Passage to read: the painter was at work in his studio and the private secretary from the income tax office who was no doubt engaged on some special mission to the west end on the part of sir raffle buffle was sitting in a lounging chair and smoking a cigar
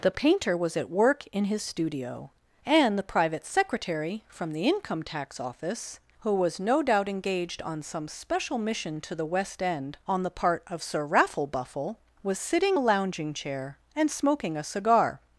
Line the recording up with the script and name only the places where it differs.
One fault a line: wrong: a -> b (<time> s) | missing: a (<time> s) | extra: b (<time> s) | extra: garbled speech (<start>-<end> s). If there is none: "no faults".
missing: in (12.8 s)